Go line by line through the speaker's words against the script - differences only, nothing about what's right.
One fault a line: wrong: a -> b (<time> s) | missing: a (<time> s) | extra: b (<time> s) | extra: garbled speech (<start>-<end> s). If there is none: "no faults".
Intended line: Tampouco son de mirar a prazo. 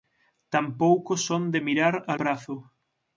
no faults